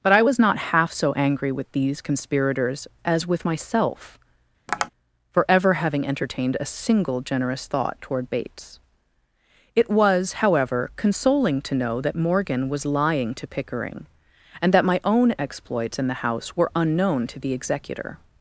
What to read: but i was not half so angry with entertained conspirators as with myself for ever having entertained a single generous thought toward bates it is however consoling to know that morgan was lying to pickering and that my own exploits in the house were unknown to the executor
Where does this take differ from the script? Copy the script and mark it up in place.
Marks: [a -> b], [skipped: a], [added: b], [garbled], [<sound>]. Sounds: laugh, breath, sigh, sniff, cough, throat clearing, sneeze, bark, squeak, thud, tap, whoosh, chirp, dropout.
but i was not half so angry with [entertained -> these] conspirators as with myself [tap] for ever having entertained a single generous thought toward bates it [is -> was] however consoling to know that morgan was lying to pickering and that my own exploits in the house were unknown to the executor